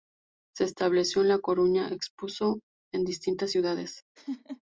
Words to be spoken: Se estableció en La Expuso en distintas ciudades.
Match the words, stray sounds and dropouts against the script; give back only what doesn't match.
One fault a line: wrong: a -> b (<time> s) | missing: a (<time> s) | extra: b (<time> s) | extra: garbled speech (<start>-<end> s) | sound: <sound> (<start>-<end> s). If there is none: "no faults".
extra: Coruña (1.4 s)
sound: laugh (4.2-4.6 s)